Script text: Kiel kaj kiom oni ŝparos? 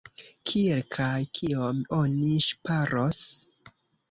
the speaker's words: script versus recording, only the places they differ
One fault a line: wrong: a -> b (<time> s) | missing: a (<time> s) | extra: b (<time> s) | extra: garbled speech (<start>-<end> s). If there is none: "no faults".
no faults